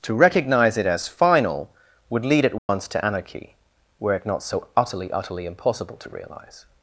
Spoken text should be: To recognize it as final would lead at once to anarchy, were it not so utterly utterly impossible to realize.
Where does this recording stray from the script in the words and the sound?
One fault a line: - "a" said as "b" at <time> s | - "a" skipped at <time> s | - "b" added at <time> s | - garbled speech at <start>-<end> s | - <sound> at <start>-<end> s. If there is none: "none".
- dropout at 2.6-2.7 s